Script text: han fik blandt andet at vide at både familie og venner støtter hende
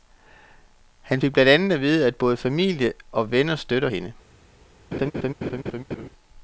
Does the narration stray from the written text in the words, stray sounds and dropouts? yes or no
yes